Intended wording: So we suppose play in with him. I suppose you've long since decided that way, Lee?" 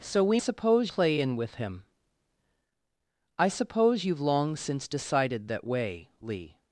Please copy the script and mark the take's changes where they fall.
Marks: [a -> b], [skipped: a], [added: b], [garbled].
So we suppose play in with him. I suppose you've long since decided that way, Lee?"